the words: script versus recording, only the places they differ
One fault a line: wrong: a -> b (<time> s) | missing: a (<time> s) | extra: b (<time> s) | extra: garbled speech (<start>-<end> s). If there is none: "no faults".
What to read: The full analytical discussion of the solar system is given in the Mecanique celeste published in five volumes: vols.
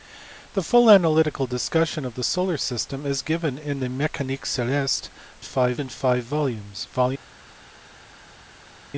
wrong: published -> five (5.4 s)